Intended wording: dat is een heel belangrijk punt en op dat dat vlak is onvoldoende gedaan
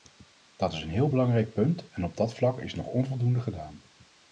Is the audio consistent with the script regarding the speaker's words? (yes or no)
no